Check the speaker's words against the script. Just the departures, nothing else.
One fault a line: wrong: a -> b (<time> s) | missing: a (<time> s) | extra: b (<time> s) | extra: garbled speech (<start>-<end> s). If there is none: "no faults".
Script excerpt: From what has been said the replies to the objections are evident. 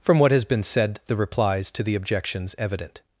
missing: are (2.5 s)